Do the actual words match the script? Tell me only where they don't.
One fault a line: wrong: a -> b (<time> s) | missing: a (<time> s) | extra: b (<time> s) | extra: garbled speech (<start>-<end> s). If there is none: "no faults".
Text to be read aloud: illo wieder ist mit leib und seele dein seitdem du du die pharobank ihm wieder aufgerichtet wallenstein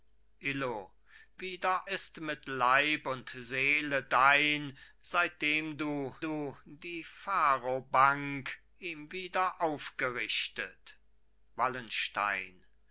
no faults